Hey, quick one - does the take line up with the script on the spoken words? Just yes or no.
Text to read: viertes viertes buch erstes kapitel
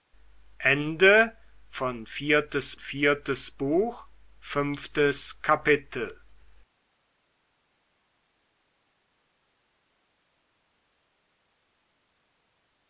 yes